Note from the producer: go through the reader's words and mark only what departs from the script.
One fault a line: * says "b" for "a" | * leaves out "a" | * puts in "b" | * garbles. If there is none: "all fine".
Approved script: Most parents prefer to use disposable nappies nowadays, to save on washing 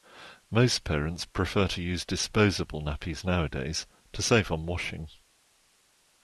all fine